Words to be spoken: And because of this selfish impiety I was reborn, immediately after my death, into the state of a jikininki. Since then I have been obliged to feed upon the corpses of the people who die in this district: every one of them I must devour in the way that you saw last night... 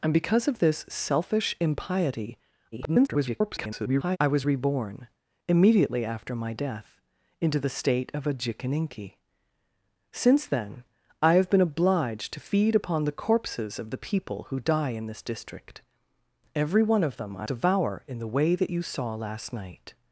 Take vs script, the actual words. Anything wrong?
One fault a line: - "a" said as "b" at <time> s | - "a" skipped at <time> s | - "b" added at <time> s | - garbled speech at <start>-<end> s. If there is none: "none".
- garbled speech at 2.7-4.2 s
- "must" skipped at 17.5 s